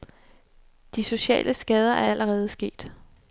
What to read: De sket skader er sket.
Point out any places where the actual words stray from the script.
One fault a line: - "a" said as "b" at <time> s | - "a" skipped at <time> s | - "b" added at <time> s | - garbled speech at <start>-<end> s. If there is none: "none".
- "sket" said as "sociale" at 1.0 s
- "allerede" added at 2.0 s